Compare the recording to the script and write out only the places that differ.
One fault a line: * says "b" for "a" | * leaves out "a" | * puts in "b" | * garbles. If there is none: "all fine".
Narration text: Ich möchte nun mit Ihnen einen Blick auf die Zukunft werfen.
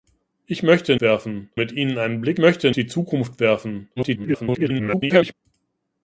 * says "werfen" for "nun"
* says "möchte" for "auf"
* garbles